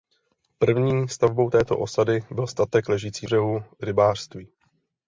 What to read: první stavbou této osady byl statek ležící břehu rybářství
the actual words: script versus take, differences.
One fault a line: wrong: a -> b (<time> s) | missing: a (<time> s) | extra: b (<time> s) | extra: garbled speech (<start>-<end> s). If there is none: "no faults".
no faults